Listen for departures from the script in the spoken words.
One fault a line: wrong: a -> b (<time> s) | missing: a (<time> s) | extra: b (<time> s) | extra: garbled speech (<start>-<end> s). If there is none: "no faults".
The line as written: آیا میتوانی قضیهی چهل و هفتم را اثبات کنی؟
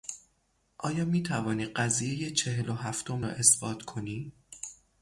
no faults